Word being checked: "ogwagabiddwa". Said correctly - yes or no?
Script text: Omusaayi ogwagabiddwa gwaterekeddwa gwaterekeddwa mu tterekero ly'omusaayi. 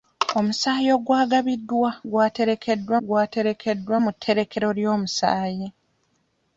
yes